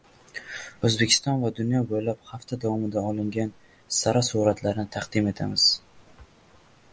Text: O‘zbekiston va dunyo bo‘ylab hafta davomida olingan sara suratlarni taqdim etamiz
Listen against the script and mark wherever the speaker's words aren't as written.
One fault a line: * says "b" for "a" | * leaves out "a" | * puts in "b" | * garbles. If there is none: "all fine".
all fine